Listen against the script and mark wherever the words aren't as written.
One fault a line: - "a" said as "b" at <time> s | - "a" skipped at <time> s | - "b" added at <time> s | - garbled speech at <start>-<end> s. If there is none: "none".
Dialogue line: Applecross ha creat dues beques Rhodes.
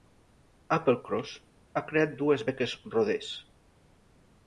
none